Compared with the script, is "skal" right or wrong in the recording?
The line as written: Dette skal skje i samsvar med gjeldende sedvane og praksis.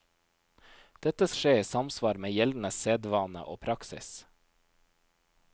wrong